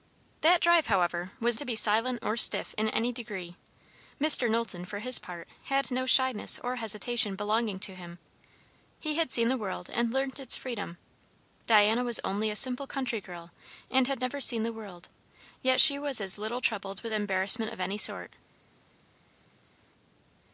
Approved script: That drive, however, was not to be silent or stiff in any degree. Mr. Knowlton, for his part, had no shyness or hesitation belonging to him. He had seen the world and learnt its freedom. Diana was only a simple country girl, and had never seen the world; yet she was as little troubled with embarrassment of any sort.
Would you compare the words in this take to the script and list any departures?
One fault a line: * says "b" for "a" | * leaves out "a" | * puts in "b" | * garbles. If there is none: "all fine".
* leaves out "not"